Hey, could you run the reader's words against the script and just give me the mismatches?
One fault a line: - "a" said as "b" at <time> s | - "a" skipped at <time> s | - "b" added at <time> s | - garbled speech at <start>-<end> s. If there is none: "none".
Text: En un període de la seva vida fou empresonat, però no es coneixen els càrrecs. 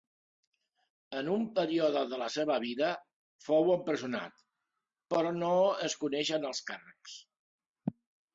none